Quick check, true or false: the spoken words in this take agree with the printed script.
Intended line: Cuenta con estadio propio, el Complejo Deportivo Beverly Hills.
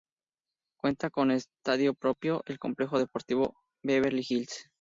true